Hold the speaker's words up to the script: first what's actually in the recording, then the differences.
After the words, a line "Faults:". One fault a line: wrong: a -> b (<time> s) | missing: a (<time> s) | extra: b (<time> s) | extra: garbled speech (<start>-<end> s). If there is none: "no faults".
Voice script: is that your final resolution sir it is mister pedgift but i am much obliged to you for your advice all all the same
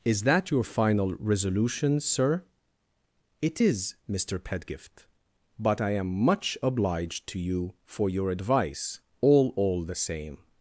is that your final resolution sir it is mister pedgift but i am much obliged to you for your advice all all the same
Faults:
no faults